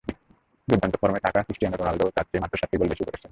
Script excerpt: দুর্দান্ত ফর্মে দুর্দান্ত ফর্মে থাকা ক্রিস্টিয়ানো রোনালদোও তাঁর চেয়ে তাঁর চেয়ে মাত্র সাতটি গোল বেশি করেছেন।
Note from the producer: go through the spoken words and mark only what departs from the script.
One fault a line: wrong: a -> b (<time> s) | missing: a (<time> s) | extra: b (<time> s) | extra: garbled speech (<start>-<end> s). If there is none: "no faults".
missing: দুর্দান্ত ফর্মে (1.2 s)
missing: তাঁর চেয়ে (2.4 s)